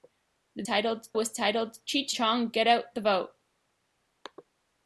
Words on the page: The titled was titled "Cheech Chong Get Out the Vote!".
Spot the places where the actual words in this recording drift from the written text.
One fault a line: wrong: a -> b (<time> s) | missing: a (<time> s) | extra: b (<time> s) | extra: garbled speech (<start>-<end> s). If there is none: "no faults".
no faults